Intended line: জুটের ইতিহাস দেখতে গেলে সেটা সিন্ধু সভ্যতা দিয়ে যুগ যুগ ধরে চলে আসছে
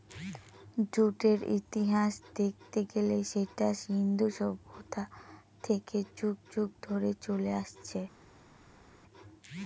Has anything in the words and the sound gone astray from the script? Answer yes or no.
yes